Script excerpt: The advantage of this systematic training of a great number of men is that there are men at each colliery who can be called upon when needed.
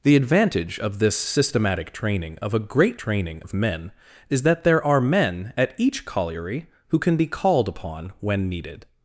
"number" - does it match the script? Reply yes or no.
no